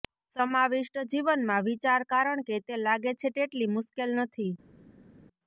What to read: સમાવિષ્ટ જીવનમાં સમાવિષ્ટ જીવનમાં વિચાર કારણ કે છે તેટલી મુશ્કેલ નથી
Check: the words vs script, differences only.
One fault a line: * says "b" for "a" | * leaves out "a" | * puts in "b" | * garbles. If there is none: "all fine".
* leaves out "સમાવિષ્ટ જીવનમાં"
* puts in "તે લાગે"